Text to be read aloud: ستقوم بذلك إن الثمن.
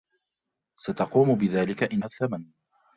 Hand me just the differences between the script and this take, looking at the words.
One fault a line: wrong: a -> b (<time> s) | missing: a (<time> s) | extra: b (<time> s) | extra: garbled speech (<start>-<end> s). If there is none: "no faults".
no faults